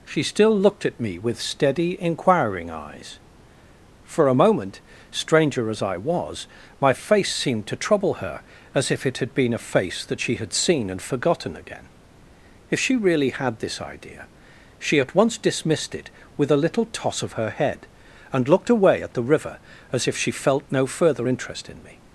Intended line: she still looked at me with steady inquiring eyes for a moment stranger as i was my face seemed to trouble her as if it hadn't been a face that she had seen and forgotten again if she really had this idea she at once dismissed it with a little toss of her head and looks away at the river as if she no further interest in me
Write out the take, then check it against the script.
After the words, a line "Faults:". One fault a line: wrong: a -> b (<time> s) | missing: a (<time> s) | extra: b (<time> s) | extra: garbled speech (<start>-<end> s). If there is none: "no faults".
she still looked at me with steady inquiring eyes for a moment stranger as i was my face seemed to trouble her as if it had been a face that she had seen and forgotten again if she really had this idea she at once dismissed it with a little toss of her head and looked away at the river as if she felt no further interest in me
Faults:
wrong: hadn't -> had (9.2 s)
wrong: looks -> looked (18.5 s)
extra: felt (20.3 s)